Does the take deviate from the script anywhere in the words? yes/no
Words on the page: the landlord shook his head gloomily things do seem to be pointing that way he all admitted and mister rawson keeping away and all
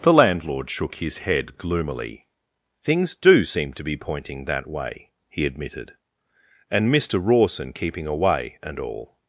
yes